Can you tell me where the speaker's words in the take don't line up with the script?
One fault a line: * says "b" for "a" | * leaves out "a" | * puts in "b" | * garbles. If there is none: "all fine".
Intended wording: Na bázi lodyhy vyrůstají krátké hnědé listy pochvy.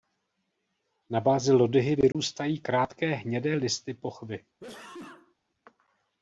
all fine